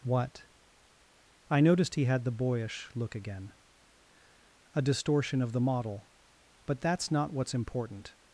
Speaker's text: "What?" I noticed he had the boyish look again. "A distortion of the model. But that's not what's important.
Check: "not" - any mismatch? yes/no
no